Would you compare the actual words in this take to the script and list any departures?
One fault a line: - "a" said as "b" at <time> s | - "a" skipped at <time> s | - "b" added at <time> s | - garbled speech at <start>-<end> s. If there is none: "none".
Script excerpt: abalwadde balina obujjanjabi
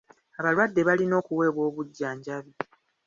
- "okuweebwa" added at 1.2 s